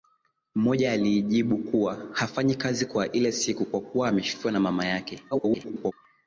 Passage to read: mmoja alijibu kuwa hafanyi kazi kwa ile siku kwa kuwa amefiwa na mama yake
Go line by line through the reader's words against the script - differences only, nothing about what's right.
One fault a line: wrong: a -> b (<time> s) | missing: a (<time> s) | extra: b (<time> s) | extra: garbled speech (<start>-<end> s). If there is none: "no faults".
extra: garbled speech (5.3-5.9 s)